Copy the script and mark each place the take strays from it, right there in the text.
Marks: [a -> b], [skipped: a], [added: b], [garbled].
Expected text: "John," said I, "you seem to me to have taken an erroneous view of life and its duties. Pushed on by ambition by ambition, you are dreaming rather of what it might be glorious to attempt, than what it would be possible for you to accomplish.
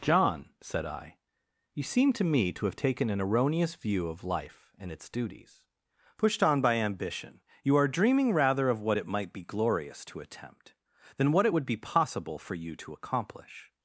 "John," said I, "you seem to me to have taken an erroneous view of life and its duties. Pushed on by ambition [skipped: by ambition,] you are dreaming rather of what it might be glorious to attempt, than what it would be possible for you to accomplish.